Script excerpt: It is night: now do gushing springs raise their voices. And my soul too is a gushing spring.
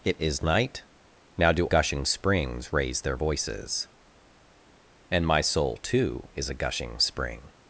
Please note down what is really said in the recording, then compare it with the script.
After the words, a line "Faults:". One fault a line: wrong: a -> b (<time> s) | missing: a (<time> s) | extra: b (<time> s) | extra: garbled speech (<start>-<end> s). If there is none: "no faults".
It is night: now do gushing springs raise their voices. And my soul too is a gushing spring.
Faults:
no faults